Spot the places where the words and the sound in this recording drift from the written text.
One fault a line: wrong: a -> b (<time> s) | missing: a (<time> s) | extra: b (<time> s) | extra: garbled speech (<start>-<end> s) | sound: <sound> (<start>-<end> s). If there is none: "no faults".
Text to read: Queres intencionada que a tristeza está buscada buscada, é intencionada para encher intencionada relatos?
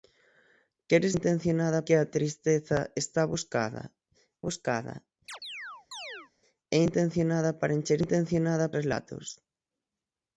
sound: chirp (5.3-6.3 s)